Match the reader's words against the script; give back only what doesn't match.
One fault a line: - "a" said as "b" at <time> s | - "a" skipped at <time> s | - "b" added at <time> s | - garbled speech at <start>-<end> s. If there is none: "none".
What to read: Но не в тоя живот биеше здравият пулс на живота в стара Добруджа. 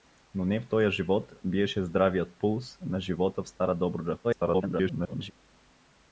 - garbled speech at 4.2-5.3 s